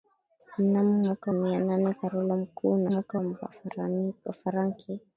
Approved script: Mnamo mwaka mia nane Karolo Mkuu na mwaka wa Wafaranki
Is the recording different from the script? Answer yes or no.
no